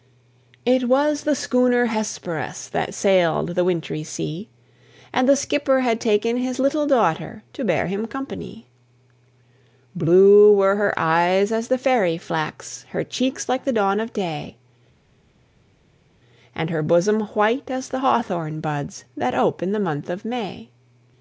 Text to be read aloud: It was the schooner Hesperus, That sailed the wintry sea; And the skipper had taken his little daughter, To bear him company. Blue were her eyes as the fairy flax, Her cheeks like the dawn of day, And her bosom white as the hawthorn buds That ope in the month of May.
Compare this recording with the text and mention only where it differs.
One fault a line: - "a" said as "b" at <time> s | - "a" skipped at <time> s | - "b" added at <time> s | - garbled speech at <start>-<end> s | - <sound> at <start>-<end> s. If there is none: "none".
none